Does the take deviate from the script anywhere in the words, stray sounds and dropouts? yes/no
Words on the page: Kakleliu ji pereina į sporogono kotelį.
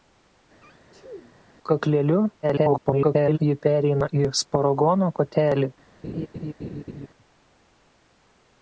yes